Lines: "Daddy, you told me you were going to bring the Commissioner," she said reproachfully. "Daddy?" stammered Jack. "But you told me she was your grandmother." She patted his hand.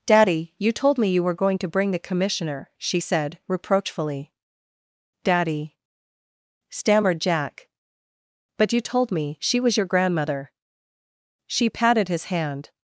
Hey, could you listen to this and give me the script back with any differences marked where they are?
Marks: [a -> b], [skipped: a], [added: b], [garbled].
"Daddy, you told me you were going to bring the Commissioner," she said reproachfully. "Daddy?" stammered Jack. "But you told me she was your grandmother." She patted his hand.